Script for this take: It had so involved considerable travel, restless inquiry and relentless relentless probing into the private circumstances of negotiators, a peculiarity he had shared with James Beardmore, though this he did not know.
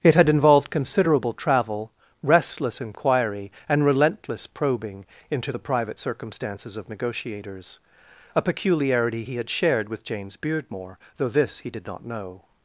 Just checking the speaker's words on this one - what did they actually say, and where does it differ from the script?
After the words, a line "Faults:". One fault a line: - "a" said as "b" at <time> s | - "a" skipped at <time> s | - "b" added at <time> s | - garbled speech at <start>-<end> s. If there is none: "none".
It had involved considerable travel, restless inquiry and relentless probing into the private circumstances of negotiators, a peculiarity he had shared with James Beardmore, though this he did not know.
Faults:
- "so" skipped at 0.3 s
- "relentless" skipped at 4.5 s